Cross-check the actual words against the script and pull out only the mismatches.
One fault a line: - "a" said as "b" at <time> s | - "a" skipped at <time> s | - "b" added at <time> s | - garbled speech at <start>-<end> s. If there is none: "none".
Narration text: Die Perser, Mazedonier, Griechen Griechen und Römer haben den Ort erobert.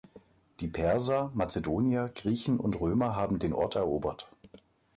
- "Griechen" skipped at 2.6 s